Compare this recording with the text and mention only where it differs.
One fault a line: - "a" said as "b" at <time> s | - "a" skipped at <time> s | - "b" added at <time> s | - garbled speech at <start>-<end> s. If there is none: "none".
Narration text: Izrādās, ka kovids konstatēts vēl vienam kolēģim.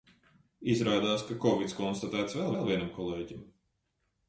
- "vēl" added at 2.5 s